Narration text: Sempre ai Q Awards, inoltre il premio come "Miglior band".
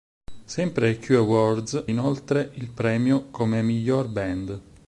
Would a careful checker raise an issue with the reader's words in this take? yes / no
no